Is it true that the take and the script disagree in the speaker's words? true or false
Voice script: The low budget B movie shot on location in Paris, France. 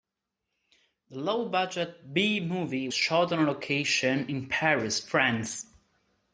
false